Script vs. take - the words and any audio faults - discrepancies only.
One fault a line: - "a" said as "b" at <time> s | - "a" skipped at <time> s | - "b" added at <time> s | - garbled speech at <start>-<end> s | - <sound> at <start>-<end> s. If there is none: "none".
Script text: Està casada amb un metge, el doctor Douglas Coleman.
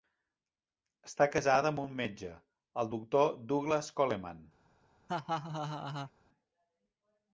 - laugh at 5.1-6.1 s